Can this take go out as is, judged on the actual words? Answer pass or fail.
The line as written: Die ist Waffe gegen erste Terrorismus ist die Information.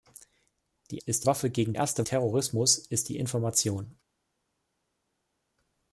pass